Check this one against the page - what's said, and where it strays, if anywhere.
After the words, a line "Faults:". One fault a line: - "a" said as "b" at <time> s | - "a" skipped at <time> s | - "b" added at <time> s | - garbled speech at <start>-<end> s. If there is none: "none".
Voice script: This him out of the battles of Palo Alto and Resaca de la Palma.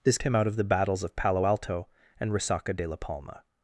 This him out of the battles of Palo Alto and Resaca de la Palma.
Faults:
none